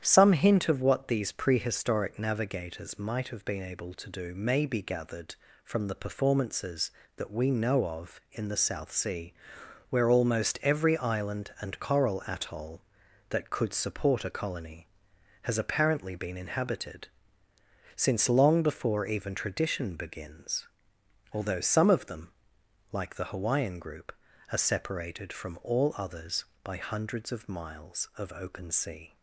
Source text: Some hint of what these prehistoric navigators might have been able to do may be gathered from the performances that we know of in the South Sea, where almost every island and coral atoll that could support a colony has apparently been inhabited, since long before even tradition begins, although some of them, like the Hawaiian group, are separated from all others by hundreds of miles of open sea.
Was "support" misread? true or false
false